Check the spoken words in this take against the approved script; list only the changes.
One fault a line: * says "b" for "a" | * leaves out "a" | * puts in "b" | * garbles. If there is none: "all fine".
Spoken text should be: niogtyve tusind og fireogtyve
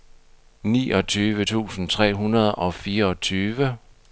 * puts in "tre hundrede"